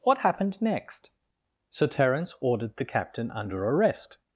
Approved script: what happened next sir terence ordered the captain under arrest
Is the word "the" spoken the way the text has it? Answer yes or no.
yes